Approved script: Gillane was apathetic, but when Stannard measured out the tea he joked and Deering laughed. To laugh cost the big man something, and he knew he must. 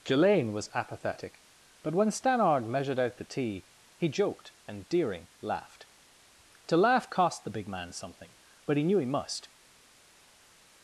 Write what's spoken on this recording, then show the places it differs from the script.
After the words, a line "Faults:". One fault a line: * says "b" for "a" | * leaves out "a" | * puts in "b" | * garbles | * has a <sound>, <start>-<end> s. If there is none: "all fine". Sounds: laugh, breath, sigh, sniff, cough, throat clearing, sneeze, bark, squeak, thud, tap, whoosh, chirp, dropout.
Gillane was apathetic, but when Stannard measured out the tea he joked and Deering laughed. To laugh cost the big man something, but he knew he must.
Faults:
* says "but" for "and"